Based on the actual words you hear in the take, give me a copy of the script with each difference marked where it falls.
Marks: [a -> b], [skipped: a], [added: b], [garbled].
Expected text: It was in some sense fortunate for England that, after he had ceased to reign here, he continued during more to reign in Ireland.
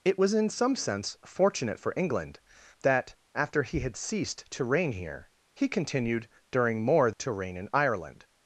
It was in some sense fortunate for England that, after he had ceased to reign here, he continued during more to reign in Ireland.